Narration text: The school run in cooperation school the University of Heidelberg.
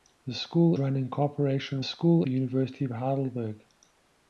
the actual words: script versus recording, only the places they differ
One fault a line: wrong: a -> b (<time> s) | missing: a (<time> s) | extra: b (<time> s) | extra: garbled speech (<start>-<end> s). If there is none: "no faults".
no faults